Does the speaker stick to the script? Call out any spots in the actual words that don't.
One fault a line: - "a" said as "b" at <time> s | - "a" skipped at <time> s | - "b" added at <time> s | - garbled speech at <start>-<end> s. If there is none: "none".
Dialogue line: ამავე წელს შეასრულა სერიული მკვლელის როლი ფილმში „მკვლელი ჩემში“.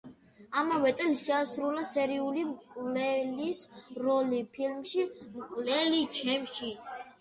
none